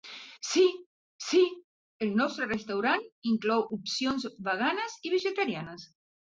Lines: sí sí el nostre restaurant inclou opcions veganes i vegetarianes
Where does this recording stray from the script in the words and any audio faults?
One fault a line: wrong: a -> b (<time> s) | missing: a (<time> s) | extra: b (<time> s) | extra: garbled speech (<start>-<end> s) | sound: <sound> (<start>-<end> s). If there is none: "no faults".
no faults